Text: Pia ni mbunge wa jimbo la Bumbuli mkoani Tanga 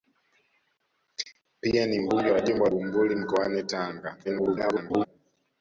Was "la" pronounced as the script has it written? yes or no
no